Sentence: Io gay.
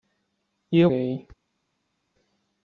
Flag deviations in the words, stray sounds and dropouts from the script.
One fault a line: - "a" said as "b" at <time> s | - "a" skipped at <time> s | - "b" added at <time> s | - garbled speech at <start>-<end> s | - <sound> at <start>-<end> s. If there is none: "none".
none